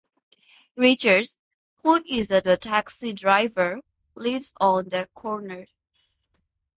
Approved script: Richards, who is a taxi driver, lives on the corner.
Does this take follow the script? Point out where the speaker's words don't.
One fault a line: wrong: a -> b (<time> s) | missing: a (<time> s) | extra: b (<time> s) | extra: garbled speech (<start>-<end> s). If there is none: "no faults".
extra: a (2.5 s)